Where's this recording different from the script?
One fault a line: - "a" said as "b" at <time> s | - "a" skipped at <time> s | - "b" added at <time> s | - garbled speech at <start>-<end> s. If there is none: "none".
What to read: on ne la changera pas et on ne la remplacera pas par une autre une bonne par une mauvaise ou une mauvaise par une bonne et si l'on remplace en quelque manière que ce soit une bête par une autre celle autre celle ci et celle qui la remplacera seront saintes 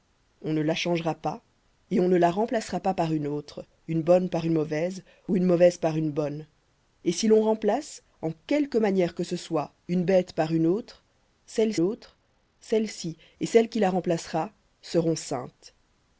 none